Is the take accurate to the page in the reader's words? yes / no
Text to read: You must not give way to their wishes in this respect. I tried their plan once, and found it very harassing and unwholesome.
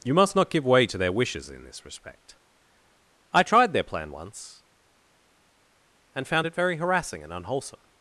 yes